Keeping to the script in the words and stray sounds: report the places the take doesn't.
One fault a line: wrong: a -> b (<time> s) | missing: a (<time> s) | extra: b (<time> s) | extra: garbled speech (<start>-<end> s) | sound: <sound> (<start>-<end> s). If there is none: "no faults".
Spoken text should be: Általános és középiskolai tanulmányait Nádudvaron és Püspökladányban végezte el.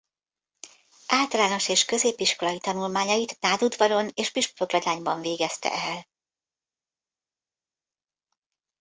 no faults